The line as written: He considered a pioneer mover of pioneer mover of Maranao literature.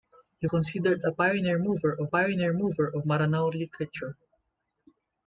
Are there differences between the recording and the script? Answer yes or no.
no